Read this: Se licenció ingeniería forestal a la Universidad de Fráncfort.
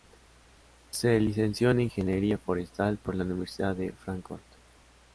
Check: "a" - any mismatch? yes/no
yes